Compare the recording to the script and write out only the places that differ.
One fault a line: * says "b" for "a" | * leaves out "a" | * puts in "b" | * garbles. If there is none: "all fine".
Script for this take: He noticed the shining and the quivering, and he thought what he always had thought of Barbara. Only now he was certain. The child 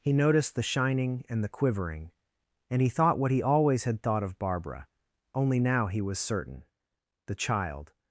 all fine